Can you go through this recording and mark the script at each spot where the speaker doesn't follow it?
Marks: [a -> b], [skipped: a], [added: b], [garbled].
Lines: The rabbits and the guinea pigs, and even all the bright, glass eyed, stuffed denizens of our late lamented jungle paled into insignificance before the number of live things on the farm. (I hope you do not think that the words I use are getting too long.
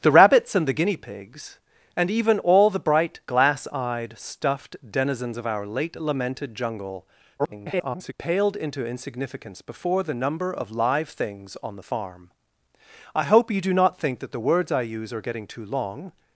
The rabbits and the guinea pigs, and even all the bright, glass eyed, stuffed denizens of our late lamented jungle [garbled] paled into insignificance before the number of live things on the farm. (I hope you do not think that the words I use are getting too long.